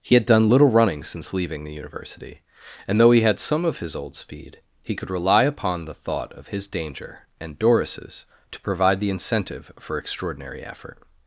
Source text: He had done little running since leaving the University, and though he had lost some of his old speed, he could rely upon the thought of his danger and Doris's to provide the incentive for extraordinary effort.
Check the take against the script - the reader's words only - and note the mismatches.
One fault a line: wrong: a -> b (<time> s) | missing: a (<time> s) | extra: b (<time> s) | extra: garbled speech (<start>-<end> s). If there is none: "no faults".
missing: lost (3.4 s)